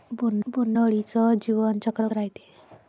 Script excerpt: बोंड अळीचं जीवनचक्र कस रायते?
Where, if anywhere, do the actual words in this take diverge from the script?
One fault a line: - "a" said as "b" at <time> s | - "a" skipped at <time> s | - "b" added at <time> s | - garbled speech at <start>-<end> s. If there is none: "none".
- "बोंड" added at 0.5 s
- "कस" skipped at 2.1 s